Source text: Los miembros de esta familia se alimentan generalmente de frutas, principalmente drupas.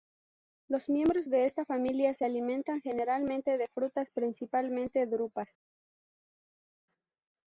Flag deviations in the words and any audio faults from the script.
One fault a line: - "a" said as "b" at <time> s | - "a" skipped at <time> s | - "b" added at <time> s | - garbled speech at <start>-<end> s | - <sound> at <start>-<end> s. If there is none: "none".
none